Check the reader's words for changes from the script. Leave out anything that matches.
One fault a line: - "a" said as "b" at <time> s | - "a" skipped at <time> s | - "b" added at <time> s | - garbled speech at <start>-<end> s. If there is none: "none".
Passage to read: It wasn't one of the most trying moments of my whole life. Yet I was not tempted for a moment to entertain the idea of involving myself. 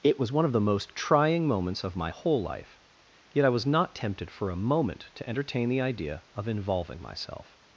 - "wasn't" said as "was" at 0.2 s